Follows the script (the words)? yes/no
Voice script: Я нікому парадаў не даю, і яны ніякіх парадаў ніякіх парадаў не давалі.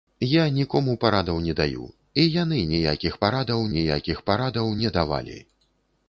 yes